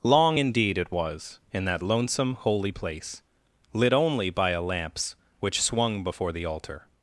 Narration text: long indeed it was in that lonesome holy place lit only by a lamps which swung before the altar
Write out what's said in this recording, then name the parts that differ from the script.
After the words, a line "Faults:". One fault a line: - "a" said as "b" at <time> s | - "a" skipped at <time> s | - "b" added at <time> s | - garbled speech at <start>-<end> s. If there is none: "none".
long indeed it was in that lonesome holy place lit only by a lamps which swung before the altar
Faults:
none